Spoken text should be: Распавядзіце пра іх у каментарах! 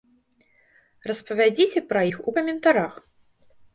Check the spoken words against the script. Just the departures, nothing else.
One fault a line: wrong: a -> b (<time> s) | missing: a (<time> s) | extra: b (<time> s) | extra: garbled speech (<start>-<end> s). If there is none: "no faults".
no faults